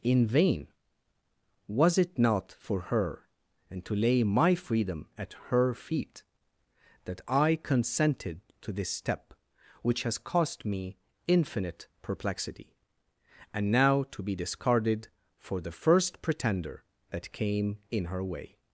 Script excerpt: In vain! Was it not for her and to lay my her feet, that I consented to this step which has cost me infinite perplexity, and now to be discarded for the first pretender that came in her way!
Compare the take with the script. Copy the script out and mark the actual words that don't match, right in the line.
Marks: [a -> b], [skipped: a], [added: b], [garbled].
In vain! Was it not for her and to lay my [added: freedom at] her feet, that I consented to this step which has cost me infinite perplexity, and now to be discarded for the first pretender that came in her way!